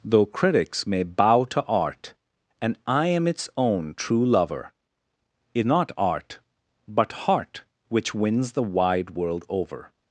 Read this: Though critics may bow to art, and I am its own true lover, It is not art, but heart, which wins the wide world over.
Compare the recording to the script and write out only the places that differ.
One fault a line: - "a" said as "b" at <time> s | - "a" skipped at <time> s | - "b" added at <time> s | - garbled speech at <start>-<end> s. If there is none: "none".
- "is" skipped at 5.7 s